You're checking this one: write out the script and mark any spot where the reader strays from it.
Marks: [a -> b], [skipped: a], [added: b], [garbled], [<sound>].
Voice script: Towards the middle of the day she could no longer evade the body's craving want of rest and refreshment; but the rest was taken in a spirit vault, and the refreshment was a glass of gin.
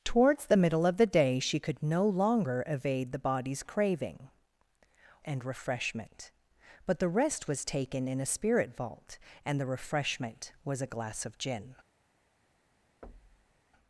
Towards the middle of the day she could no longer evade the body's craving [skipped: want of rest] and refreshment; but the rest was taken in a spirit vault, and the refreshment was a glass of gin. [thud]